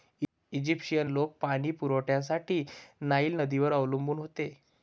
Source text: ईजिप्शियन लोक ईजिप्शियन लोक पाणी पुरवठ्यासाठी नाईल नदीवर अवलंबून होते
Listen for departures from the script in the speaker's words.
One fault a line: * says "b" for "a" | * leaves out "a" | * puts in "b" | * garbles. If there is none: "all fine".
* leaves out "ईजिप्शियन लोक"